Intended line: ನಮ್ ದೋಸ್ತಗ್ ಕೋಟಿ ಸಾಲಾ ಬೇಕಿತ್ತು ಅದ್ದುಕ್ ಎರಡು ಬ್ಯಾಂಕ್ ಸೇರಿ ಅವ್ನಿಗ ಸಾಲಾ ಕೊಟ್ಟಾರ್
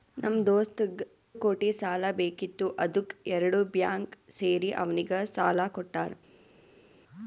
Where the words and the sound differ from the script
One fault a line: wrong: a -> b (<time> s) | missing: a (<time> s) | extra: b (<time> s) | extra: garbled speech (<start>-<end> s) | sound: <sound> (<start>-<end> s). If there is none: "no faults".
no faults